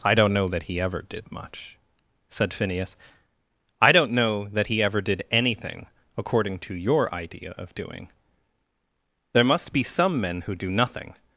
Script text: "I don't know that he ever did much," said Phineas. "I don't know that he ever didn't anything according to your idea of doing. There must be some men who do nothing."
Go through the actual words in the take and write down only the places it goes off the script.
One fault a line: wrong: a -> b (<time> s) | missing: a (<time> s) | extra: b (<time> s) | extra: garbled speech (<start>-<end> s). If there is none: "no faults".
wrong: didn't -> did (5.0 s)